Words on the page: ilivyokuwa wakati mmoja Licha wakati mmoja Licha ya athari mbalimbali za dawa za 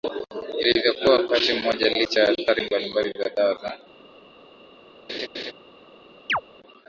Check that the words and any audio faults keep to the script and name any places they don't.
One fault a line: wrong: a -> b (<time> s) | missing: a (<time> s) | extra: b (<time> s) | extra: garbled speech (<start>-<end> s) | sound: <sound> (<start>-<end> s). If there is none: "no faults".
missing: wakati mmoja Licha (2.2 s)
sound: laugh (5.1-5.5 s)
sound: chirp (6.3-6.4 s)